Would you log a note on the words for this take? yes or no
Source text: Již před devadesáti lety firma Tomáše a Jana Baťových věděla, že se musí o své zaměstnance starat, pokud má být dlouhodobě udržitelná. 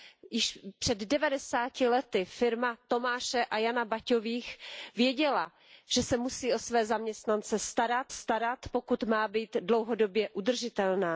yes